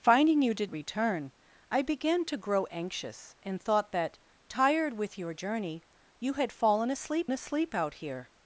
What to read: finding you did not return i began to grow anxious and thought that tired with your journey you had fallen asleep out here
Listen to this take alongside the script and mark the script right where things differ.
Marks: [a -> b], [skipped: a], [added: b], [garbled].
finding you did [skipped: not] return i began to grow anxious and thought that tired with your journey you had fallen asleep [added: asleep] out here